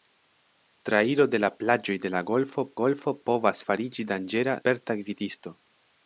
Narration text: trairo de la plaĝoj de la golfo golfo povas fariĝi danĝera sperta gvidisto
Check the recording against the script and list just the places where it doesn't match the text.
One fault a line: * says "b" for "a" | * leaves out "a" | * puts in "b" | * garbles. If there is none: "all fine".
all fine